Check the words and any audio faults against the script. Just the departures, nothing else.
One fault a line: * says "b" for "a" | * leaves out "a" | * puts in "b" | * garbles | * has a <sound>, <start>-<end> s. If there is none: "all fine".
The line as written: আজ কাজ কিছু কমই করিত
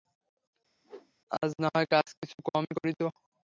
* has a whoosh, 0.8-1.1 s
* puts in "নাহয়"